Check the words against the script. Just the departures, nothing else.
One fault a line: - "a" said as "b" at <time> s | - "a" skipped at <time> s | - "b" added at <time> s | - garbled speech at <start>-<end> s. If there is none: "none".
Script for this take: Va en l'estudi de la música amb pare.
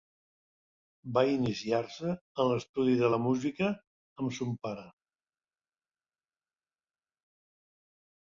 - "iniciar se" added at 1.3 s
- "son" added at 4.4 s